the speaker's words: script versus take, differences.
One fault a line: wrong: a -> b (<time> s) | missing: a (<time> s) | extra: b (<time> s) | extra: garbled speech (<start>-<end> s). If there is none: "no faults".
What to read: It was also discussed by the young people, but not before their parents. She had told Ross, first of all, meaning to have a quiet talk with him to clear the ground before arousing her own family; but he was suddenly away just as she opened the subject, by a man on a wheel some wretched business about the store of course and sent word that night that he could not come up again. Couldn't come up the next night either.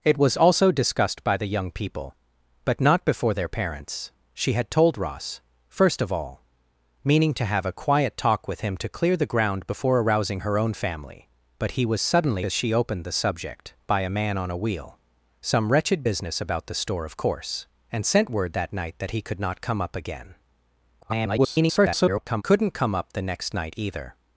missing: away just (12.4 s)
extra: garbled speech (21.0-22.4 s)